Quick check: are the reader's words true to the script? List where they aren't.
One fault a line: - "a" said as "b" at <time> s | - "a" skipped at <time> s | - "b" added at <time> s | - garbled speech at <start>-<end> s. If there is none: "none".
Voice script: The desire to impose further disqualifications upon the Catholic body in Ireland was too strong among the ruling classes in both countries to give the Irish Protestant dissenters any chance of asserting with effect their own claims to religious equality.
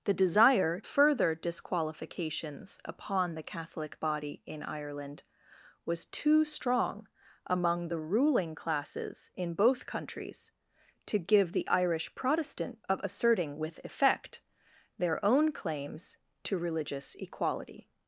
- "to impose" skipped at 0.8 s
- "dissenters any chance" skipped at 12.8 s